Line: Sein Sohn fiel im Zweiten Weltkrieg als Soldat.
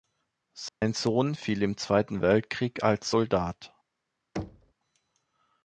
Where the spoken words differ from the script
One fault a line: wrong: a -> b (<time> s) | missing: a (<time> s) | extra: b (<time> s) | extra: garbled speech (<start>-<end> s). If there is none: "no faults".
no faults